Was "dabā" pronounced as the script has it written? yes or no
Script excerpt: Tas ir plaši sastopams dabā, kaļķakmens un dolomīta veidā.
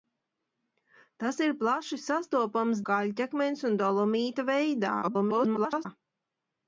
no